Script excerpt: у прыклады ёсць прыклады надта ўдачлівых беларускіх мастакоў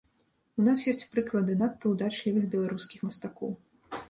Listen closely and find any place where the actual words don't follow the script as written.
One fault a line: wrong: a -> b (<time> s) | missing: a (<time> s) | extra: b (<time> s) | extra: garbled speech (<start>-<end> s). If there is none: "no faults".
wrong: прыклады -> нас (0.7 s)